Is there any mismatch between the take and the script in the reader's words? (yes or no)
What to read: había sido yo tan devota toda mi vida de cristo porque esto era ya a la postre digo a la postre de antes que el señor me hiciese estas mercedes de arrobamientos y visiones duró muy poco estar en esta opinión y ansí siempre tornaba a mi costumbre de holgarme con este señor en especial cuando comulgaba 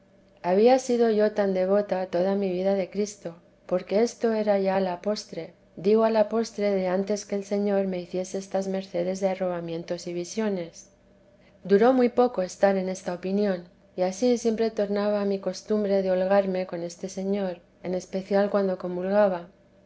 no